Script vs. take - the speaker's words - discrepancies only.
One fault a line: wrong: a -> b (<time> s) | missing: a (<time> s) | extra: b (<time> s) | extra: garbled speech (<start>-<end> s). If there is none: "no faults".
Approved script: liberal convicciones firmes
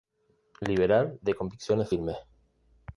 extra: de (1.2 s)